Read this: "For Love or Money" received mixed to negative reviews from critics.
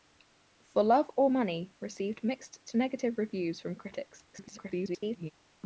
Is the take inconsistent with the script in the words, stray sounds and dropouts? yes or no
yes